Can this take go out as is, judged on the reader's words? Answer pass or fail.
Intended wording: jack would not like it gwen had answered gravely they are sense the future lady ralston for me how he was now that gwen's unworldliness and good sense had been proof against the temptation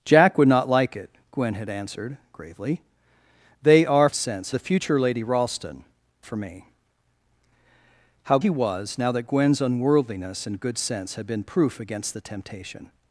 pass